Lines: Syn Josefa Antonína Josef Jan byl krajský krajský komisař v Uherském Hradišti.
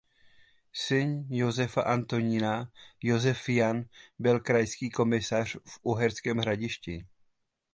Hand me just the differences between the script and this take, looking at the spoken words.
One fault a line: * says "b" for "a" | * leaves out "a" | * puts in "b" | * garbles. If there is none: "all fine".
* leaves out "krajský"